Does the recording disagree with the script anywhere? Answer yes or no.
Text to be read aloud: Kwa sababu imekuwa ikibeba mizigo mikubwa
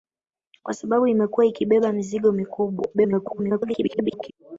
yes